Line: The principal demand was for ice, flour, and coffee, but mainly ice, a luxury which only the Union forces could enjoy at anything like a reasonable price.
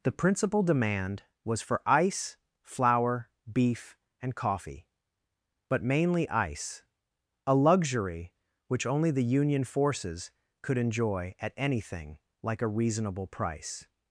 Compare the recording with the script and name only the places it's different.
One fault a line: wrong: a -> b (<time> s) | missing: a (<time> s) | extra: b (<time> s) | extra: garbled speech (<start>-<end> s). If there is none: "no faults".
extra: beef (3.5 s)